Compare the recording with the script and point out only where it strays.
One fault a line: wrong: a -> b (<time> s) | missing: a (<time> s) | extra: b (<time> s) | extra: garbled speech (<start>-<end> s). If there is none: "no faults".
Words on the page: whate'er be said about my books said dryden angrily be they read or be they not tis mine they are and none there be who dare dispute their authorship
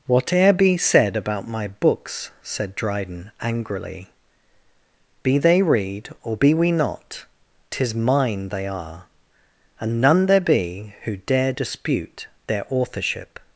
wrong: they -> we (6.5 s)